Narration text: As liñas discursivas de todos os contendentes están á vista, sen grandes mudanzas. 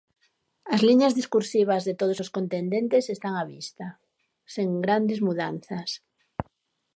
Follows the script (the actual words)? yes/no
yes